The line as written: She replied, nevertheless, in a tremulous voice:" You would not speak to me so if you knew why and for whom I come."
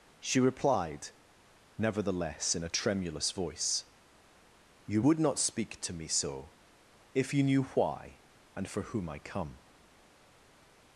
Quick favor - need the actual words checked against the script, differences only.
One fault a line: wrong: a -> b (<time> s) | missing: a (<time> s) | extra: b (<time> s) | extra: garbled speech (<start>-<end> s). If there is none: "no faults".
no faults